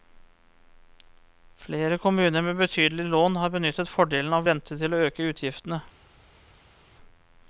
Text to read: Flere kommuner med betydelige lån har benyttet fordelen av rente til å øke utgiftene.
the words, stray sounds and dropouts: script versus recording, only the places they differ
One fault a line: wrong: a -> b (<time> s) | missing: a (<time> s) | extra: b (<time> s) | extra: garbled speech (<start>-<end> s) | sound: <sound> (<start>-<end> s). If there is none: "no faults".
no faults